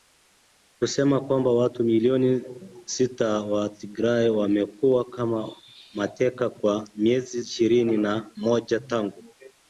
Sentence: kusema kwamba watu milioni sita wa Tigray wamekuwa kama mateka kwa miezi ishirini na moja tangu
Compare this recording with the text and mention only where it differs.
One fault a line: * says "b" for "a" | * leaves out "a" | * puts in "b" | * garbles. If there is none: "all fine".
all fine